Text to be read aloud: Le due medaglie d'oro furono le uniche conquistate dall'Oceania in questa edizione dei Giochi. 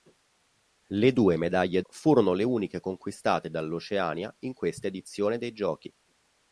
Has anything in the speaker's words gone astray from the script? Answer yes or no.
yes